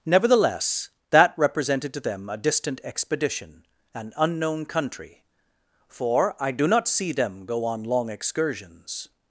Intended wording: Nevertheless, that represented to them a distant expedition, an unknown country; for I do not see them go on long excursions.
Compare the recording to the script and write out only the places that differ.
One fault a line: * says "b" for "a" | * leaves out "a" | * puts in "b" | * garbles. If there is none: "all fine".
all fine